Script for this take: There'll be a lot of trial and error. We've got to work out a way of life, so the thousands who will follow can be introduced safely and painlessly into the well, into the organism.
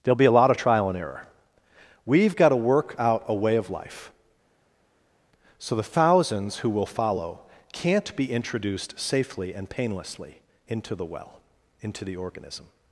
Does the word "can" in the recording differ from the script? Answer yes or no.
yes